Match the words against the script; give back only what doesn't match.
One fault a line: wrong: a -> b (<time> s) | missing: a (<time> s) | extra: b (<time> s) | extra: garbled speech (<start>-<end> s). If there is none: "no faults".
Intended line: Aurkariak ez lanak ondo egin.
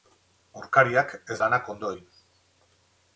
no faults